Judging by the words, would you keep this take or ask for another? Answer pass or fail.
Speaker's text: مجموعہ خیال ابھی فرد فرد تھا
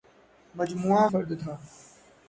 fail